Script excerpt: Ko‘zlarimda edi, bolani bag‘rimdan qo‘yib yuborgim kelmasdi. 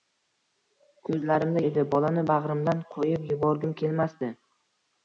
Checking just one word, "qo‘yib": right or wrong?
right